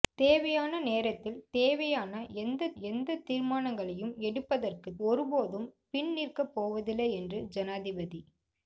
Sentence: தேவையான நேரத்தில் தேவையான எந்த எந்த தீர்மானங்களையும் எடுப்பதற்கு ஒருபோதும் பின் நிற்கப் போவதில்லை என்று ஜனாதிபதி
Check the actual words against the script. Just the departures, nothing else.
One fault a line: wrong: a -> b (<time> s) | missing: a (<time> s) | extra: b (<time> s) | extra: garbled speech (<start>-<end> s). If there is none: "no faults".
no faults